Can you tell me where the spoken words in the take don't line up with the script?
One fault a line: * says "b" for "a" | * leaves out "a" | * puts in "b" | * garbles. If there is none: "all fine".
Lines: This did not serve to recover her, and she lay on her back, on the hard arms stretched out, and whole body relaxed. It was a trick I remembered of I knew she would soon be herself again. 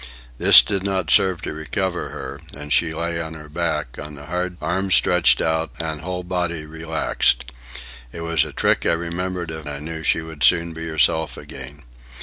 all fine